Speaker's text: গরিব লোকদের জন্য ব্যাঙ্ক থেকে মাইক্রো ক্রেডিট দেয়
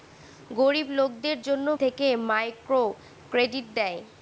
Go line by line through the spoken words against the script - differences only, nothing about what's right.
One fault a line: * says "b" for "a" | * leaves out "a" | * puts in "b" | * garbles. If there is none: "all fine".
* leaves out "ব্যাঙ্ক"